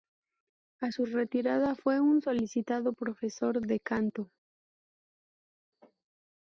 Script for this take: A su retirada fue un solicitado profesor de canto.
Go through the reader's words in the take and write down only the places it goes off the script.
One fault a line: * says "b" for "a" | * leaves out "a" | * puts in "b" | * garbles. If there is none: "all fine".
all fine